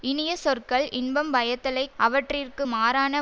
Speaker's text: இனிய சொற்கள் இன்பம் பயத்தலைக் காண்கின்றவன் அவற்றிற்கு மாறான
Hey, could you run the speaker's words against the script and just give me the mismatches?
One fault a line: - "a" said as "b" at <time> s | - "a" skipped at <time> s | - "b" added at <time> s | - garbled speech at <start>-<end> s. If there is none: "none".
- "காண்கின்றவன்" skipped at 1.9 s